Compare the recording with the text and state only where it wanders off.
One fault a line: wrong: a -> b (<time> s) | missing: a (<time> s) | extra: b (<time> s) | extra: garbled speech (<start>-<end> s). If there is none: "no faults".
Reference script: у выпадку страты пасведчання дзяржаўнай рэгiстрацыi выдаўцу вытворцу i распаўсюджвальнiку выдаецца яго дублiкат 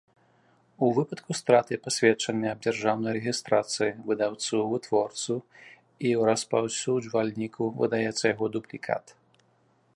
extra: аб (2.5 s)